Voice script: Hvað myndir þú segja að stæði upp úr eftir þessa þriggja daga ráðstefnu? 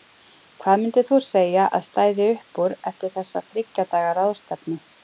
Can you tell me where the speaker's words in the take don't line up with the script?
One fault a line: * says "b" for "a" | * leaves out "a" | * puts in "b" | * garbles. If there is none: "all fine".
all fine